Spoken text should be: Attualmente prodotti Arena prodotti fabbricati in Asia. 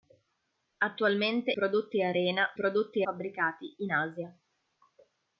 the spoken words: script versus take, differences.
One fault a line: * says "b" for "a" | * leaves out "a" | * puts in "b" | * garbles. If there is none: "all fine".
all fine